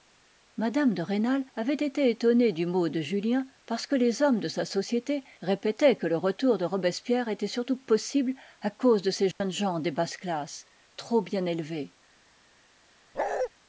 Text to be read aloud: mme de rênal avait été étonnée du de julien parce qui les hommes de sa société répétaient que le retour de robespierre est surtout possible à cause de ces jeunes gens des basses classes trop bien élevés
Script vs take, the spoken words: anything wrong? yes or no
yes